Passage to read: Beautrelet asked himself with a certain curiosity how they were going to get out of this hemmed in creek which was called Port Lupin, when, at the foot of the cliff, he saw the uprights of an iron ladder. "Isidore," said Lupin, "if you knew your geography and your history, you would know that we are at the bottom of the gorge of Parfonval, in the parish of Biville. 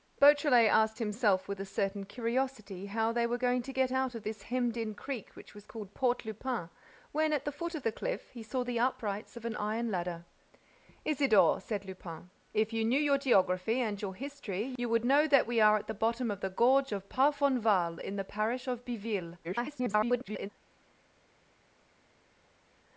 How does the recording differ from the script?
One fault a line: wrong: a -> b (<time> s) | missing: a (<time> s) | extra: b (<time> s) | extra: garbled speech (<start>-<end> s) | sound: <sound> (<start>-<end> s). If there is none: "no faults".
extra: garbled speech (19.4-20.5 s)